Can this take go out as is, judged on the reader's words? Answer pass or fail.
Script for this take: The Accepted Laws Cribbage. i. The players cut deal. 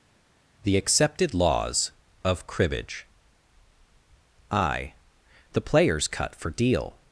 fail